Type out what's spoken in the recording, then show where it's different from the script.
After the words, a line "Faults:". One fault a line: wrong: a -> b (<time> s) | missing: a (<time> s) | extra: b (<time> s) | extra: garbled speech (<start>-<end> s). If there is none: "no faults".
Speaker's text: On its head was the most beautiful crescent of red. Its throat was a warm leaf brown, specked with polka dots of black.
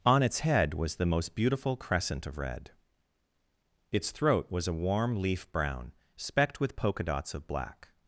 On its head was the most beautiful crescent of red. Its throat was a warm leaf brown, specked with polka dots of black.
Faults:
no faults